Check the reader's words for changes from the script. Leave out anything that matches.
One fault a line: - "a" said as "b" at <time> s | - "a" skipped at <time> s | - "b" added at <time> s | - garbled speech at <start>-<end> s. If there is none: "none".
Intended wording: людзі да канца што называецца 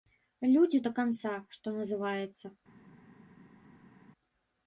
none